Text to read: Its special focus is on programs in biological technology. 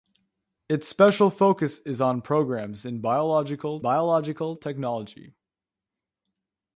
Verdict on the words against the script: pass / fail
fail